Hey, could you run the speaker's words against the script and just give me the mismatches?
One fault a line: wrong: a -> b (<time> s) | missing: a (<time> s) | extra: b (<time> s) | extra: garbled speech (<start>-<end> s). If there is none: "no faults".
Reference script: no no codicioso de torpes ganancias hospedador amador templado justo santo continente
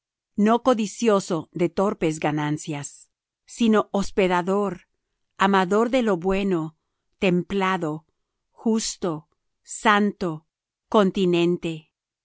missing: no (0.6 s)
extra: sino (3.5 s)
extra: de lo bueno (5.9 s)